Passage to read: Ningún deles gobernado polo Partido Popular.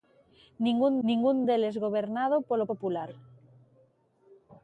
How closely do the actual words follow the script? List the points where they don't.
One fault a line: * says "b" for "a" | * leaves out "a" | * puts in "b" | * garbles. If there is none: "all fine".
* puts in "ningún"
* leaves out "Partido"